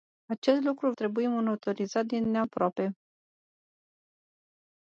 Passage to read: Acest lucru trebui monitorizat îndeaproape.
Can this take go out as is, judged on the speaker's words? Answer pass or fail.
pass